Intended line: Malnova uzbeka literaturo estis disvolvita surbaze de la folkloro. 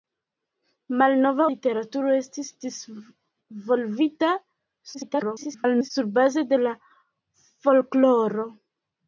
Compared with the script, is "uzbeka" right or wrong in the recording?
wrong